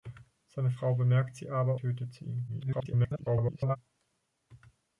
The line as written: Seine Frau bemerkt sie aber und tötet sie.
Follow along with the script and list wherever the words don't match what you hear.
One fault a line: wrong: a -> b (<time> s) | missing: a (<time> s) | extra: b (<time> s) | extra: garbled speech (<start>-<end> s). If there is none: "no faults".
missing: und (1.8 s)
extra: garbled speech (2.5-3.8 s)